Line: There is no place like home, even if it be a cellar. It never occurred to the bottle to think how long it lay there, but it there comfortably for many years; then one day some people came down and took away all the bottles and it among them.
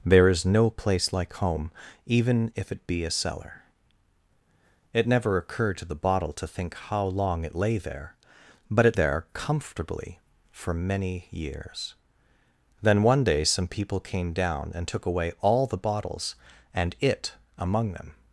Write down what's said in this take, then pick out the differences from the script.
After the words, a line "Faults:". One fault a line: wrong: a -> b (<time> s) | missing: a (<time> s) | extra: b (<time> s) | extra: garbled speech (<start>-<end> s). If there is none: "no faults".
There is no place like home, even if it be a cellar. It never occurred to the bottle to think how long it lay there, but it there comfortably for many years; then one day some people came down and took away all the bottles and it among them.
Faults:
no faults